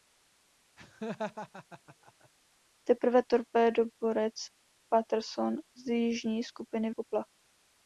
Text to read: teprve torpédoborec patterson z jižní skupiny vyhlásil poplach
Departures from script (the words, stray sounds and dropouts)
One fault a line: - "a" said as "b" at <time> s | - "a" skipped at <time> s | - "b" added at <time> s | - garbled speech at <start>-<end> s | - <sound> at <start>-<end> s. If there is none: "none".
- laugh at 0.8-2.3 s
- "vyhlásil" skipped at 6.9 s